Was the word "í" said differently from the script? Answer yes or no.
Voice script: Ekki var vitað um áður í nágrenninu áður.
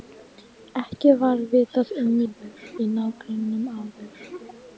no